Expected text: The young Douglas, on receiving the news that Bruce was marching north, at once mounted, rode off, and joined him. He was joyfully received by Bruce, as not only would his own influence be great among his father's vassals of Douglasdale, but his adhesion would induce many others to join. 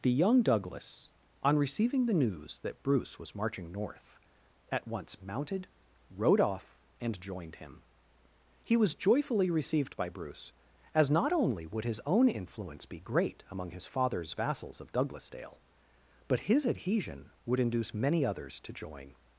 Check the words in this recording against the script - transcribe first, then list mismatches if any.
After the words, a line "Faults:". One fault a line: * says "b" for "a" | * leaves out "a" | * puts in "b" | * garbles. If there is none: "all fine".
The young Douglas, on receiving the news that Bruce was marching north, at once mounted, rode off, and joined him. He was joyfully received by Bruce, as not only would his own influence be great among his father's vassals of Douglasdale, but his adhesion would induce many others to join.
Faults:
all fine